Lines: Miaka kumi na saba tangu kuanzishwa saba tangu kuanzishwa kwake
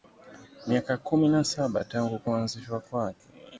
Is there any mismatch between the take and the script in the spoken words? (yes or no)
yes